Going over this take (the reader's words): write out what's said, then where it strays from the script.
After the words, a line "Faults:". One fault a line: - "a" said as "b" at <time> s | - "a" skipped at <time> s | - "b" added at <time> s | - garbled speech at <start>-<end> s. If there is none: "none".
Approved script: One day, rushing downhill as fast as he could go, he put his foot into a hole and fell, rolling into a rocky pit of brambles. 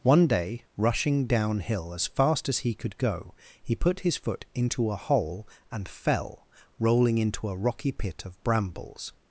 One day, rushing downhill as fast as he could go, he put his foot into a hole and fell, rolling into a rocky pit of brambles.
Faults:
none